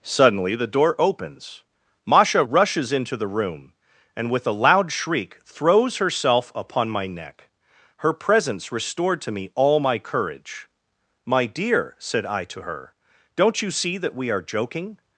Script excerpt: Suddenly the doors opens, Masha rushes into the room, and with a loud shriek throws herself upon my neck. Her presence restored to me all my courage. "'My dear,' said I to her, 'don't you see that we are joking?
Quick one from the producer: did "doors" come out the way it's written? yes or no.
no